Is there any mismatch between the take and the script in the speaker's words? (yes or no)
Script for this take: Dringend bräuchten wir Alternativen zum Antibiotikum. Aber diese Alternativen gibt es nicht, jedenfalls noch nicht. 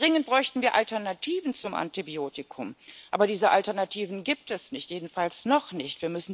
no